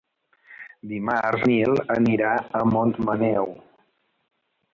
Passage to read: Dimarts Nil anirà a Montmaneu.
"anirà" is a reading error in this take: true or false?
false